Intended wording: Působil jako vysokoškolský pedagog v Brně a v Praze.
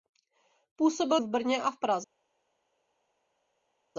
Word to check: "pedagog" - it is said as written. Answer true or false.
false